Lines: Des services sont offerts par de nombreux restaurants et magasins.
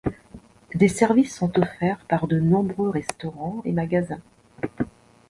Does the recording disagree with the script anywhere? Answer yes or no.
no